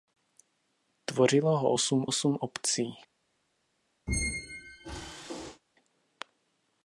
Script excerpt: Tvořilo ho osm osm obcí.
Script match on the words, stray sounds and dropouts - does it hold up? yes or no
no